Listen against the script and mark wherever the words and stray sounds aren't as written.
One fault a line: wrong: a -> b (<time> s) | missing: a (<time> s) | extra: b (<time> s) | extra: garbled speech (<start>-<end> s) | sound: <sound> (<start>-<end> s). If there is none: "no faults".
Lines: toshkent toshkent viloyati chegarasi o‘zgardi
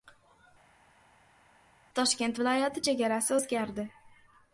missing: toshkent (2.4 s)